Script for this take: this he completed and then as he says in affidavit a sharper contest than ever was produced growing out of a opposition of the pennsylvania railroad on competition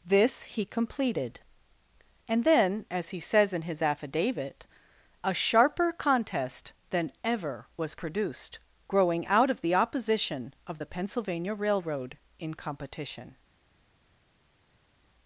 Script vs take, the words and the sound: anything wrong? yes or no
yes